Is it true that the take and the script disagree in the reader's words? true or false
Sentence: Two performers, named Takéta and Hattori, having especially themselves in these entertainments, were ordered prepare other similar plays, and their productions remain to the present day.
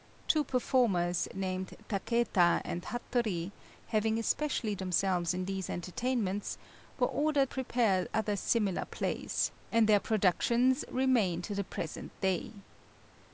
false